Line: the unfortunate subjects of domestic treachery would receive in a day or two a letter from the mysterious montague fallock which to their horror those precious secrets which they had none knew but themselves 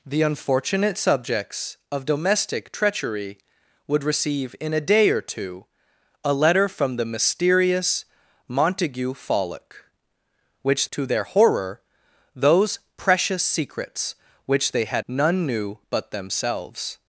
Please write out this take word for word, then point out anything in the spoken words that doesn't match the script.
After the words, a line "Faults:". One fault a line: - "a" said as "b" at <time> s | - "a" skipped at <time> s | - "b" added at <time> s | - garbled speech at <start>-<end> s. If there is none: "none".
the unfortunate subjects of domestic treachery would receive in a day or two a letter from the mysterious montague fallock which to their horror those precious secrets which they had none knew but themselves
Faults:
none